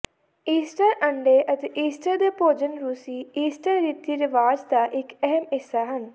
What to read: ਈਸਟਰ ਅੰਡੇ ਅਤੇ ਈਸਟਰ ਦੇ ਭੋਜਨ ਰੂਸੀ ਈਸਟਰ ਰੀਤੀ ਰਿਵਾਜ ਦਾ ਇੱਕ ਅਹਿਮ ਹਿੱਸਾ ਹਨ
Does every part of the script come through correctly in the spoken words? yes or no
yes